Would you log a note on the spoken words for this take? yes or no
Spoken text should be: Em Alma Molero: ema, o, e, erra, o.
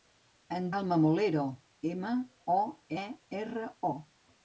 no